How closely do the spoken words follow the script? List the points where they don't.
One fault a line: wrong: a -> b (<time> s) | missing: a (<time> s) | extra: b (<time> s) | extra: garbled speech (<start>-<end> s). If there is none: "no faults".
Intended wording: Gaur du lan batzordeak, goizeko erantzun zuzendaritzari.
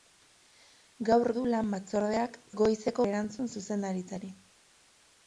no faults